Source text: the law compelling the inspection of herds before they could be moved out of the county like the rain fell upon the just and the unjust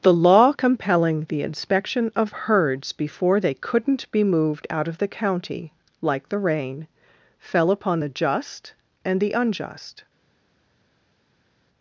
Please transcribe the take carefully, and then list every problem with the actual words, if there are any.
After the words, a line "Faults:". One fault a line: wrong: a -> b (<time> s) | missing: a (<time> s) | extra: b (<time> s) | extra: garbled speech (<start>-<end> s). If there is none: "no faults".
the law compelling the inspection of herds before they couldn't be moved out of the county like the rain fell upon the just and the unjust
Faults:
wrong: could -> couldn't (3.5 s)